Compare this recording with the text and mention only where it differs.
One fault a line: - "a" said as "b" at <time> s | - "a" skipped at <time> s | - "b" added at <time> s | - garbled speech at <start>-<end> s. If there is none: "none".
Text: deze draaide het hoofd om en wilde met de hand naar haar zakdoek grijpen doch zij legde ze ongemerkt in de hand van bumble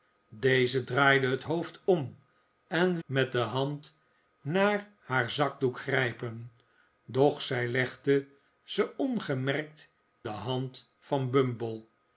- "wilde" skipped at 3.0 s
- "in" skipped at 9.9 s